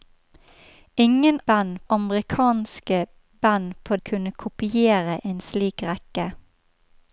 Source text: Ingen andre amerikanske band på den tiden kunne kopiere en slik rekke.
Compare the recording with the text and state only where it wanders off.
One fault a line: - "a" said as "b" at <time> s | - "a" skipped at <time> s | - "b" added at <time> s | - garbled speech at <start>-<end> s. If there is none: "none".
- "andre" said as "band" at 1.5 s
- "den tiden" skipped at 3.9 s